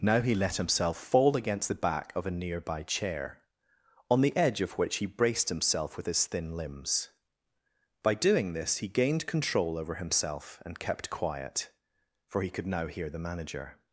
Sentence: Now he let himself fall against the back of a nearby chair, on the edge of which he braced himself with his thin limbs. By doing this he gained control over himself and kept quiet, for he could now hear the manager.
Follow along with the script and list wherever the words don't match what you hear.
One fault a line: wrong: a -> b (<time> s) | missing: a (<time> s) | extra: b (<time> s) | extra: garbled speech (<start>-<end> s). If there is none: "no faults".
no faults